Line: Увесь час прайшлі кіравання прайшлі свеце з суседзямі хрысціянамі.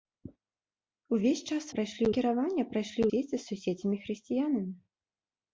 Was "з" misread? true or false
false